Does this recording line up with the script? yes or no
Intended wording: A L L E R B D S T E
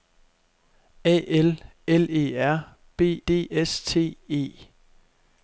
yes